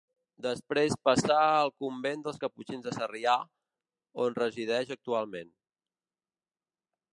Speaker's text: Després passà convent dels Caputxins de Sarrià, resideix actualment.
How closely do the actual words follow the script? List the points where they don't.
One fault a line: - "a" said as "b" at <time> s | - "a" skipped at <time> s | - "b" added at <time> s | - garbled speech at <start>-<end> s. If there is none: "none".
- "al" added at 1.6 s
- "on" added at 4.3 s